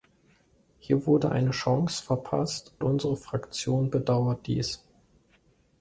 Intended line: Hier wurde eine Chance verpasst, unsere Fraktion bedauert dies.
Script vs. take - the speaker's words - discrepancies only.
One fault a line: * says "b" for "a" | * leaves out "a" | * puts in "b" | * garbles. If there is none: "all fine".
all fine